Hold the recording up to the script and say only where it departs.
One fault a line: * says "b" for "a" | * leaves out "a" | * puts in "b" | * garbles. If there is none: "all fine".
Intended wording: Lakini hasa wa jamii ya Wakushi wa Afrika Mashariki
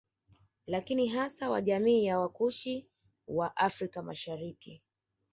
all fine